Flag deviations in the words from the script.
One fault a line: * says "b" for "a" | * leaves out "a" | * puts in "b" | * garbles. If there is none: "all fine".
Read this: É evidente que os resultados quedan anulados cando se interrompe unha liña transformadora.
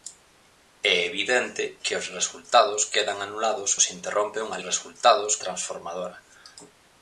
* leaves out "cando"
* says "resultados" for "liña"